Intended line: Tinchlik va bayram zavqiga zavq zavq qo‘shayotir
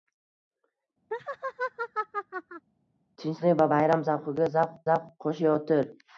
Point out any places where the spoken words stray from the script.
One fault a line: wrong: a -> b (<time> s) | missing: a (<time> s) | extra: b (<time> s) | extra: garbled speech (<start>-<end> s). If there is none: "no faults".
no faults